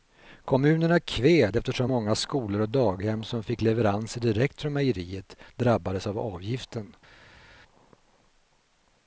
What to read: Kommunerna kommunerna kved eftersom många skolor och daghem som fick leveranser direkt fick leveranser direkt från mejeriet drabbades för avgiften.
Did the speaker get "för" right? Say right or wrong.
wrong